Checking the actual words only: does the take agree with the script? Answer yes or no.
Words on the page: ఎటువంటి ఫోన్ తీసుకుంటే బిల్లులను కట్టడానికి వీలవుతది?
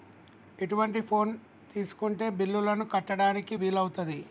yes